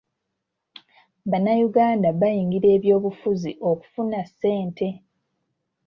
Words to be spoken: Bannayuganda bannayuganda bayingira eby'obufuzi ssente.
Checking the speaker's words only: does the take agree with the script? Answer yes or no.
no